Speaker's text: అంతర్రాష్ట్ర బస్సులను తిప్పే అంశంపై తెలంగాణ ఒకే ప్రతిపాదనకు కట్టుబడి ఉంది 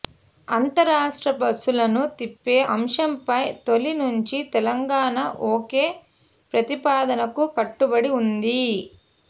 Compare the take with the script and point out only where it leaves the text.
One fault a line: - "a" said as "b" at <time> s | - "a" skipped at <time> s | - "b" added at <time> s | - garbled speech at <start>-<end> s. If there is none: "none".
- "తొలి నుంచి" added at 3.7 s